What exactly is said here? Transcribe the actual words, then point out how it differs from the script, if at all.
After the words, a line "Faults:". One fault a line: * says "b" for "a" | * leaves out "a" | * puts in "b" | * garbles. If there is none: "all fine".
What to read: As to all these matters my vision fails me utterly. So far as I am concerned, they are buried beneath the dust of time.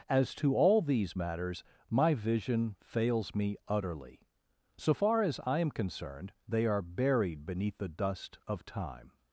As to all these matters my vision fails me utterly. So far as I am concerned, they are buried beneath the dust of time.
Faults:
all fine